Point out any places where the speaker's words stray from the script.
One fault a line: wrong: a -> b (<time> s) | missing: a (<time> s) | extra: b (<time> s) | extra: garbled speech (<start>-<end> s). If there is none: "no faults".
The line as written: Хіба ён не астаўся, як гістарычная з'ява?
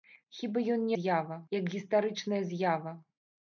wrong: астаўся -> з'ява (1.0 s)